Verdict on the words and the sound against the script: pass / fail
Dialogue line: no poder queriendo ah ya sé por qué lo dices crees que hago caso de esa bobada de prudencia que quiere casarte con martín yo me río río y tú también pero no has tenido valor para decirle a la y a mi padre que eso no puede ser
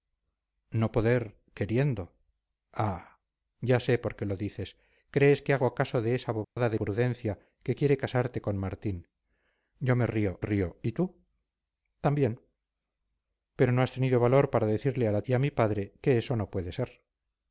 fail